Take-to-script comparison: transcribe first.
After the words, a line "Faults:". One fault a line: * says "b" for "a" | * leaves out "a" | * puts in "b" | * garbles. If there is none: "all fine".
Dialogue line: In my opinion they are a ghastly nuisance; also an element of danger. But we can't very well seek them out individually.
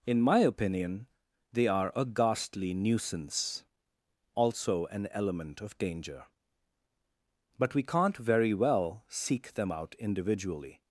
In my opinion they are a ghastly nuisance; also an element of danger. But we can't very well seek them out individually.
Faults:
all fine